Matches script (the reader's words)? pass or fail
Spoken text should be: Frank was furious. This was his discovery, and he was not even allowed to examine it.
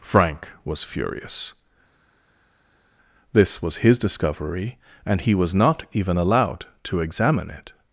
pass